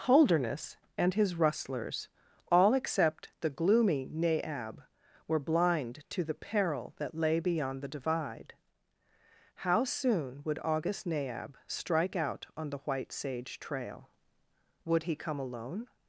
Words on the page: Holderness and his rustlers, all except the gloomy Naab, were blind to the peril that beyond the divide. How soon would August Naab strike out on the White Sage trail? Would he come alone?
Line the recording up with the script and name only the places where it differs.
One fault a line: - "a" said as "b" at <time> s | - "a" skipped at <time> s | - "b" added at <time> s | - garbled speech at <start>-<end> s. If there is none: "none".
- "lay" added at 7.1 s